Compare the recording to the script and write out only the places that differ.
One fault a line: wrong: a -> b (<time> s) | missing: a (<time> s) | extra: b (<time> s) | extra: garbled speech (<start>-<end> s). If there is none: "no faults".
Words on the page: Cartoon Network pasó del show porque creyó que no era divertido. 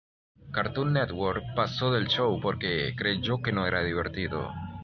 no faults